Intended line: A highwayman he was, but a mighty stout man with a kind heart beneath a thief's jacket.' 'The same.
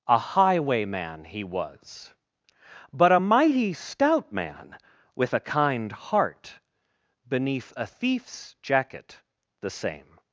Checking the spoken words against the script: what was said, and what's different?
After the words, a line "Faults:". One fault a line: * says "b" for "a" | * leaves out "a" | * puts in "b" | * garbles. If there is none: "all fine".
A highwayman he was, but a mighty stout man with a kind heart beneath a thief's jacket.' 'The same.
Faults:
all fine